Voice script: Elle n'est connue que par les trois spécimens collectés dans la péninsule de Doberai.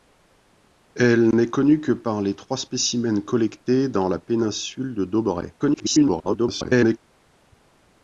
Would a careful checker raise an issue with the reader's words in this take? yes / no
yes